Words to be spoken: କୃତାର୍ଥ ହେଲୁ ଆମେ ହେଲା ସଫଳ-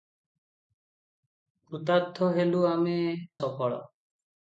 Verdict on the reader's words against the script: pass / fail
fail